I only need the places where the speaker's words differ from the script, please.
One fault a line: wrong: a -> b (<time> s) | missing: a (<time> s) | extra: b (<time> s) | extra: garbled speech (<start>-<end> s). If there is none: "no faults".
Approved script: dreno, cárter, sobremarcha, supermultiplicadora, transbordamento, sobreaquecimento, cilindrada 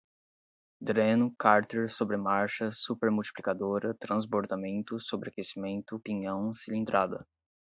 extra: pinhão (6.0 s)